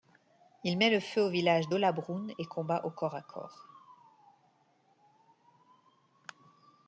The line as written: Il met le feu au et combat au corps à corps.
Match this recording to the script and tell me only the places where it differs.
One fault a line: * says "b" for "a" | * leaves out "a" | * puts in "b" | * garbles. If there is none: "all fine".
* puts in "village d'Hollabrunn"